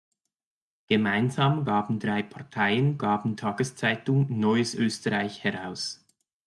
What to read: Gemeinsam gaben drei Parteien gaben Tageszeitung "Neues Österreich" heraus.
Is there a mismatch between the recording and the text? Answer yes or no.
no